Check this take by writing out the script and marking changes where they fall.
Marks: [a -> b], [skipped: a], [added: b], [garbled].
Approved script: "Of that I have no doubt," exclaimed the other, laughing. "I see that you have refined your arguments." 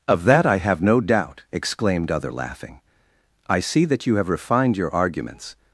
"Of that I have no doubt," exclaimed [skipped: the] other, laughing. "I see that you have refined your arguments."